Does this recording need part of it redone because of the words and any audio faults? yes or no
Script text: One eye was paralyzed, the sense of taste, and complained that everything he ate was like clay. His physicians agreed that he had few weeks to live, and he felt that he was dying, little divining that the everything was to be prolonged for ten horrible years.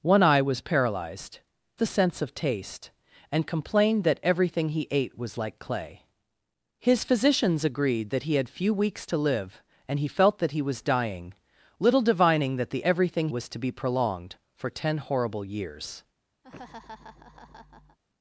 yes